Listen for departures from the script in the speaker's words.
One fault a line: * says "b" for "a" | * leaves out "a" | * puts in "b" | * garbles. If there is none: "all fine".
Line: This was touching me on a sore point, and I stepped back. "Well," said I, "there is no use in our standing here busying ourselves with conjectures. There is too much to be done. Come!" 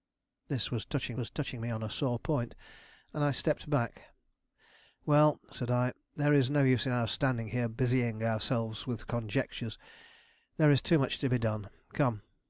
* puts in "was touching"